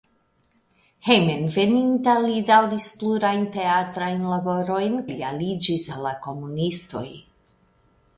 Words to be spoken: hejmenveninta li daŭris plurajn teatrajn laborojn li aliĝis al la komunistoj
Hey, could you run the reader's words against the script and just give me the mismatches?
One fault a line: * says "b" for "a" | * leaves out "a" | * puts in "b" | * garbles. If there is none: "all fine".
all fine